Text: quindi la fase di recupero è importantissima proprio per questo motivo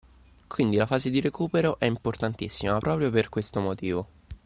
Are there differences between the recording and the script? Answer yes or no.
no